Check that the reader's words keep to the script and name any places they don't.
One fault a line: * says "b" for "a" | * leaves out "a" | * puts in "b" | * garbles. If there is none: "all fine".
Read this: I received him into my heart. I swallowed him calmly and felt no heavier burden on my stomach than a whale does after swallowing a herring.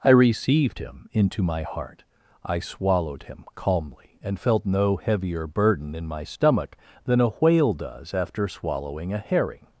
* says "in" for "on"